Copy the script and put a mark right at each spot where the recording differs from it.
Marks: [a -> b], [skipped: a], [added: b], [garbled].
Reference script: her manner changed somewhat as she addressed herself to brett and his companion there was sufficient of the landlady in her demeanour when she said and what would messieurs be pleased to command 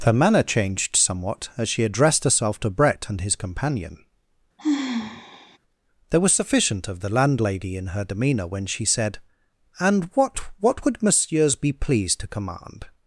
her manner changed somewhat as she addressed herself to brett and his companion there was sufficient of the landlady in her demeanour when she said and what [added: what] would messieurs be pleased to command